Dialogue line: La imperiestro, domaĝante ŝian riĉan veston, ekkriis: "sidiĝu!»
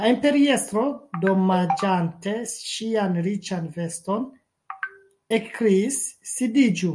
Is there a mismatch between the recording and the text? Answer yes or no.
no